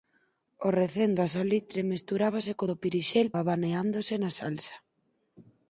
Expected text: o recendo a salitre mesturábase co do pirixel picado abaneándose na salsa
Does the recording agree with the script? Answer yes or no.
no